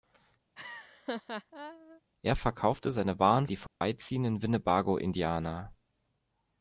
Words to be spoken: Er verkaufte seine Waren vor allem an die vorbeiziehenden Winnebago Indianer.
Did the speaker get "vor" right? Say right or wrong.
wrong